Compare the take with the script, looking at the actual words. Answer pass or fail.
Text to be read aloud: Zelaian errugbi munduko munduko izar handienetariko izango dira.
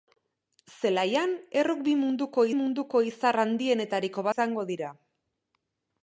pass